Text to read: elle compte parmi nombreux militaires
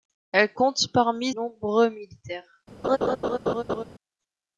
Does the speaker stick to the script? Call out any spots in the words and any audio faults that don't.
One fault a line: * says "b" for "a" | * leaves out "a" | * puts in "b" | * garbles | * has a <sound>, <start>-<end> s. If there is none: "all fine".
* has a laugh, 2.8-3.8 s